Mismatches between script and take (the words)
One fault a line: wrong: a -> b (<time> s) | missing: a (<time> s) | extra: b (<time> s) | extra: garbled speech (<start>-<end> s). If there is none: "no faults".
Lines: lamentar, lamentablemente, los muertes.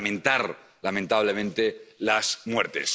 wrong: los -> las (2.0 s)